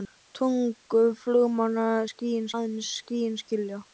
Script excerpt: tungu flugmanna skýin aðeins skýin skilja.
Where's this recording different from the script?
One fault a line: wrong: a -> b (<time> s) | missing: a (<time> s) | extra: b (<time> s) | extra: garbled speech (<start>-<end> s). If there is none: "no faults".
no faults